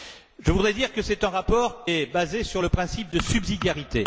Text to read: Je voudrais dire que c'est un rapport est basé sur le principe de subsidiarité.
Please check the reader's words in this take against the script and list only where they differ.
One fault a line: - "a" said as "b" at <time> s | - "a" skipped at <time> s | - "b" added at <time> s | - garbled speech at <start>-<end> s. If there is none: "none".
none